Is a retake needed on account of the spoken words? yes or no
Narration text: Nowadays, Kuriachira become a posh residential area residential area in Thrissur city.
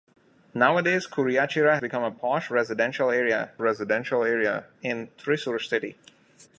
no